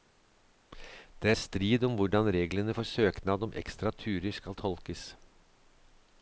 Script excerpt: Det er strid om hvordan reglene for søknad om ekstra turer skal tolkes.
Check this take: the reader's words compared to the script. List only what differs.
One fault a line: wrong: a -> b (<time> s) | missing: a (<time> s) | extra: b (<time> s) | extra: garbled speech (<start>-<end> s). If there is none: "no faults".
no faults